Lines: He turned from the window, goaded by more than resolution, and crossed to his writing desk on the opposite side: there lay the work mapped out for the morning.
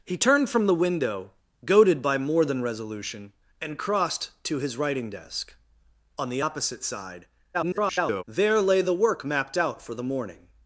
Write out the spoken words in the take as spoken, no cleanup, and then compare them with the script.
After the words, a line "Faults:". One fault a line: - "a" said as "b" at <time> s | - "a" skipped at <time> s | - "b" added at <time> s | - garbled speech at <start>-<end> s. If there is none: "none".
He turned from the window, goaded by more than resolution, and crossed to his writing desk on the opposite side: [garbled] there lay the work mapped out for the morning.
Faults:
- garbled speech at 7.5-8.2 s